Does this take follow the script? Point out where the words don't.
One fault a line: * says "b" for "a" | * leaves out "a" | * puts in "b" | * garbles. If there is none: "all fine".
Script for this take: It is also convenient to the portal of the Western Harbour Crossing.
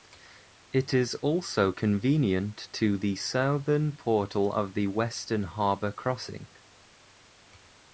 * puts in "southern"